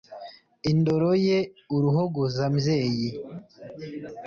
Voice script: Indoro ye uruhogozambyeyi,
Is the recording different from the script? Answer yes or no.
no